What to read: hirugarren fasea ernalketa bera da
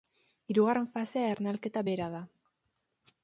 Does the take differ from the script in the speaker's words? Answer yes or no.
no